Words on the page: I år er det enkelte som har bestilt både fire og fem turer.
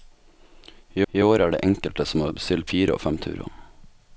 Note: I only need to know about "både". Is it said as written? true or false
false